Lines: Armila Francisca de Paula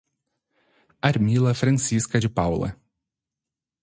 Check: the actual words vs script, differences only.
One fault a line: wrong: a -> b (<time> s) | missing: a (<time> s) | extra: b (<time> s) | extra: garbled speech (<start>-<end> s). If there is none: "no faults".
no faults